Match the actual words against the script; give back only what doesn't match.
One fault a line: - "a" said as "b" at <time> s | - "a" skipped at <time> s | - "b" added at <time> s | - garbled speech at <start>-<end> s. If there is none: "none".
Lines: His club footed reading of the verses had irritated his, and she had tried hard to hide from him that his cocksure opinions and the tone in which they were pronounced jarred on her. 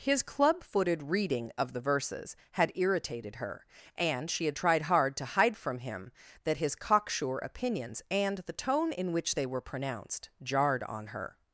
- "his" said as "her" at 3.4 s